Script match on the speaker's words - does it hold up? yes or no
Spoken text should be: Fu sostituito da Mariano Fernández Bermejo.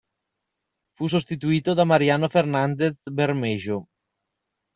yes